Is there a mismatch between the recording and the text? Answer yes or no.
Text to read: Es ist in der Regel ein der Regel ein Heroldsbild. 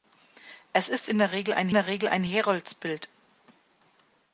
no